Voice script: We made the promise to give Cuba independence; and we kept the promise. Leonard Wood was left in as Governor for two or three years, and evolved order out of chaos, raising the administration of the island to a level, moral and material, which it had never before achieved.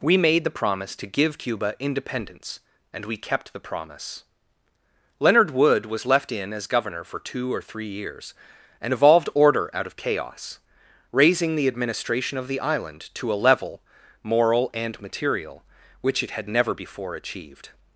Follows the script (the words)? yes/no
yes